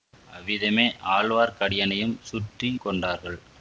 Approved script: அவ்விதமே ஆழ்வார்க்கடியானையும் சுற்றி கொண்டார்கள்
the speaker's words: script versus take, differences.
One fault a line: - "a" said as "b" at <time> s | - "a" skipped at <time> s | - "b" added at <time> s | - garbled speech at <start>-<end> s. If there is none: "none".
none